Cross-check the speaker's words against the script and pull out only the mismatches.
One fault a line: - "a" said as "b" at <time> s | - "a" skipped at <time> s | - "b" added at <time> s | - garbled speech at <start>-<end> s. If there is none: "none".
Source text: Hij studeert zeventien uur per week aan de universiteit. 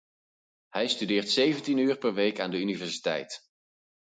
none